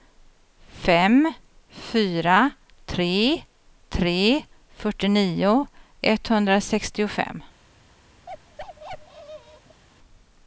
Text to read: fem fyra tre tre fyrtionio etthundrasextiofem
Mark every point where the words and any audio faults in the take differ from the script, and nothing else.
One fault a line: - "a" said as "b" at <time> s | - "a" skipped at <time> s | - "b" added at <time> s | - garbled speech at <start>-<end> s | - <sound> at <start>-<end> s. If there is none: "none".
- bark at 8.3-9.8 s